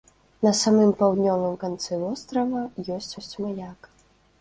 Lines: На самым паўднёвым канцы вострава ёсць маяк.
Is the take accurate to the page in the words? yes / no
no